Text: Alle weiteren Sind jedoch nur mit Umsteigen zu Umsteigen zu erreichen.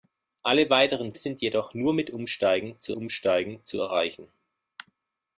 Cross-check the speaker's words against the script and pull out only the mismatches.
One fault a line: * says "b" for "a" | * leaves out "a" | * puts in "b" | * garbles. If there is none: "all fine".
all fine